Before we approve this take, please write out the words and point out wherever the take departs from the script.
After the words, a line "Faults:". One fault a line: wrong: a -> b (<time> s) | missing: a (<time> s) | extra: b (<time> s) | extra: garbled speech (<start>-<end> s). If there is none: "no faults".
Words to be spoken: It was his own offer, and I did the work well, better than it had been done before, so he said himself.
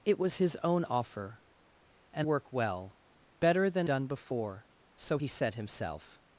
It was his own offer, and work well, better than done before, so he said himself.
Faults:
missing: I did the (2.3 s)
missing: it had been (3.9 s)